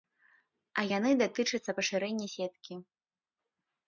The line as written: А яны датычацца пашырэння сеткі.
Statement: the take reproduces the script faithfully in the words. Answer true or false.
true